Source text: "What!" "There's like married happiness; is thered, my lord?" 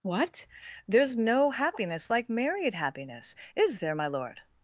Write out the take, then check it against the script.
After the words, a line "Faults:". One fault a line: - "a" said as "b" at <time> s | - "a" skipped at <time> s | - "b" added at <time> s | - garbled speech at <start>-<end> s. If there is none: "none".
"What!" "There's no happiness like married happiness; is there, my lord?"
Faults:
- "no happiness" added at 1.1 s
- "thered" said as "there" at 3.8 s